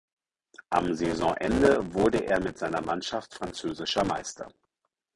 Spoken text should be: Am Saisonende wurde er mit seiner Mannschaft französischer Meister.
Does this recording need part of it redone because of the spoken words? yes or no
no